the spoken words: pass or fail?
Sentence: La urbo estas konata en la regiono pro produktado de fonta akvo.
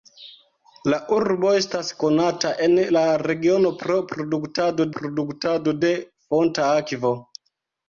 fail